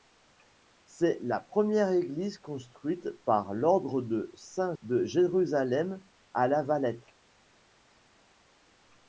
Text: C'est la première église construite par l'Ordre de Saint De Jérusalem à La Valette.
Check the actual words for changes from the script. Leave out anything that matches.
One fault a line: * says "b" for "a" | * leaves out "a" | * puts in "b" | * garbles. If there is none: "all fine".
all fine